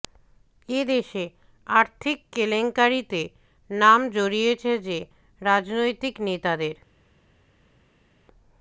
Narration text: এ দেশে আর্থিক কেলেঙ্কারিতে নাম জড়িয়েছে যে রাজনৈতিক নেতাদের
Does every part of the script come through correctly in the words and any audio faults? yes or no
yes